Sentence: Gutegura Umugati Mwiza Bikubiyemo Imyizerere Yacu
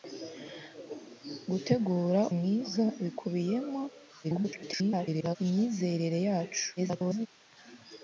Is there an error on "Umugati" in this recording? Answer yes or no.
yes